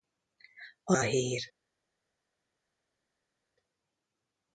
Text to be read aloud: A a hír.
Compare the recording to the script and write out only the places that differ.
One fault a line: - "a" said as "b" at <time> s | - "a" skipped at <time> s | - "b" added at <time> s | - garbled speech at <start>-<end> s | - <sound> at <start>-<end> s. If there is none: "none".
none